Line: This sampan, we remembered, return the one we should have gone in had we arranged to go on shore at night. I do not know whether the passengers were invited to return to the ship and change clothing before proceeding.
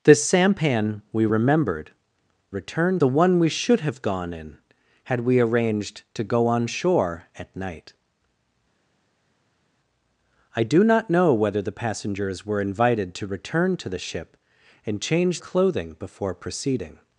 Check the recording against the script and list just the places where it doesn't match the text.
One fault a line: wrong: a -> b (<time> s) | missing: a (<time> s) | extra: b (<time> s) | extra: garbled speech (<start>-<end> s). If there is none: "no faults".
no faults